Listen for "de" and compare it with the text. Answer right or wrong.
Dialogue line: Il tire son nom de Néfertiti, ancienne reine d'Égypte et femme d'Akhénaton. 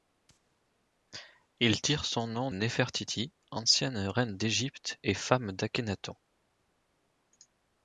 wrong